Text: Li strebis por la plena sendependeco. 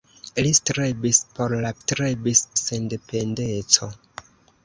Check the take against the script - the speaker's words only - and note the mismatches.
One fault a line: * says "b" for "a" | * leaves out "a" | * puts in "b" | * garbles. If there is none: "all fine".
* says "strebis" for "plena"